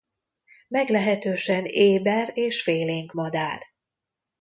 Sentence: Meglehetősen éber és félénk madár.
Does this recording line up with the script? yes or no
yes